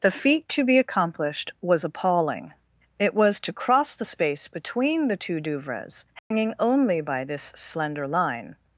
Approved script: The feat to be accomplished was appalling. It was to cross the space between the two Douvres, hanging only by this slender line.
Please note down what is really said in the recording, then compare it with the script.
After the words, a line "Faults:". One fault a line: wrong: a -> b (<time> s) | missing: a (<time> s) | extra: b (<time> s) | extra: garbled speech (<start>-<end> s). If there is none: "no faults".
The feat to be accomplished was appalling. It was to cross the space between the two Douvres, hanging only by this slender line.
Faults:
no faults